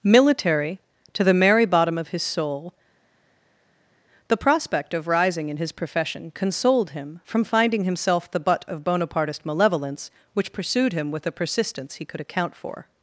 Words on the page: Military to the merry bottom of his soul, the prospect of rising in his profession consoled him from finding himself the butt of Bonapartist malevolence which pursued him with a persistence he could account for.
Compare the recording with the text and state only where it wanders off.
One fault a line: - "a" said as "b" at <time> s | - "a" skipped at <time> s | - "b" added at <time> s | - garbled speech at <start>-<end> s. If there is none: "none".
none